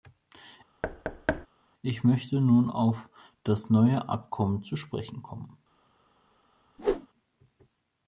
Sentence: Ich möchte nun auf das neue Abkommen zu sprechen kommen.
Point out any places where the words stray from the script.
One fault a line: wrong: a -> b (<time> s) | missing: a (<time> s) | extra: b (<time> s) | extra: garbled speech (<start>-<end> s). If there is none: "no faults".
no faults